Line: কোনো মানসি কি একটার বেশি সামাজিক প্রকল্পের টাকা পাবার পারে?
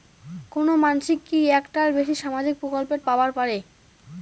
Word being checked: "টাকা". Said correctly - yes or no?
no